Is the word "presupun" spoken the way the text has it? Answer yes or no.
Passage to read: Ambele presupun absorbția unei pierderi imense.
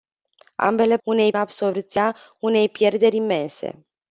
no